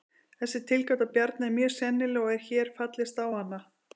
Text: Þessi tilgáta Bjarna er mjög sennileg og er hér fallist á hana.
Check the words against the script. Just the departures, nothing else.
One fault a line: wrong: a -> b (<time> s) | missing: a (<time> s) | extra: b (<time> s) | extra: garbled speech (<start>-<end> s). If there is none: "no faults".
no faults